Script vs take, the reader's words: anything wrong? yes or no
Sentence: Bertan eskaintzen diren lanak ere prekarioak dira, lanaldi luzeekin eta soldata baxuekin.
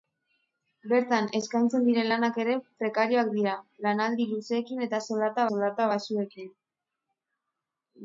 yes